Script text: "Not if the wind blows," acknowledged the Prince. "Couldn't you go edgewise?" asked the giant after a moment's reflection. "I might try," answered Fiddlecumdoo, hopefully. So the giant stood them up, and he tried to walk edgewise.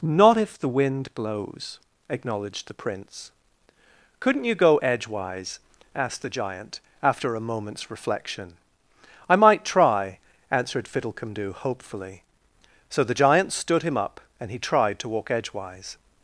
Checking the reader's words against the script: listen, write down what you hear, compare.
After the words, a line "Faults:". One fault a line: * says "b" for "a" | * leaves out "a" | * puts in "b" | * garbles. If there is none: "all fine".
"Not if the wind blows," acknowledged the Prince. "Couldn't you go edgewise?" asked the giant after a moment's reflection. "I might try," answered Fiddlecumdoo, hopefully. So the giant stood him up, and he tried to walk edgewise.
Faults:
* says "him" for "them"